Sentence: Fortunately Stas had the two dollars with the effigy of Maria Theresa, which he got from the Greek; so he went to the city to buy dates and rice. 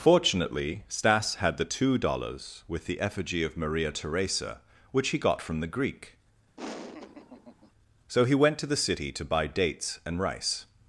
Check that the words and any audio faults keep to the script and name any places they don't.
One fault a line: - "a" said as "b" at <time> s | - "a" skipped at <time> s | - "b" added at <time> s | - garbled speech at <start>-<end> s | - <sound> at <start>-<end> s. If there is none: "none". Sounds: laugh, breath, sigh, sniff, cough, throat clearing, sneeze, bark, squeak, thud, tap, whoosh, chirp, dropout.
- laugh at 6.6-7.7 s